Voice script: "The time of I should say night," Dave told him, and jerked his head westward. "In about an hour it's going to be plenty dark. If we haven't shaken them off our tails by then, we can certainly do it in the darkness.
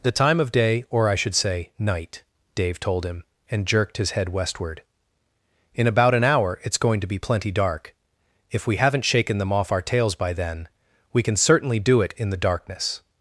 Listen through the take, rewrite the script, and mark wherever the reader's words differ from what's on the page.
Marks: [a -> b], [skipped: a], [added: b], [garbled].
"The time of [added: day or] I should say night," Dave told him, and jerked his head westward. "In about an hour it's going to be plenty dark. If we haven't shaken them off our tails by then, we can certainly do it in the darkness.